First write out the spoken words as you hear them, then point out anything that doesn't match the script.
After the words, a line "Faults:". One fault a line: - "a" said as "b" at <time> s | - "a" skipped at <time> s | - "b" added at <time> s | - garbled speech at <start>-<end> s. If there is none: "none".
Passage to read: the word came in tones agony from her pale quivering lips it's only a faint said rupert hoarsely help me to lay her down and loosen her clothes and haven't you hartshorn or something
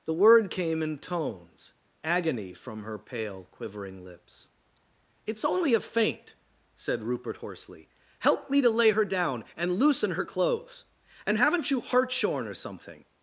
the word came in tones agony from her pale quivering lips it's only a faint said rupert hoarsely help me to lay her down and loosen her clothes and haven't you hartshorn or something
Faults:
none